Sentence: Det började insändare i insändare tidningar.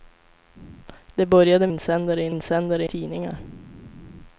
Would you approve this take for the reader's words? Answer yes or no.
yes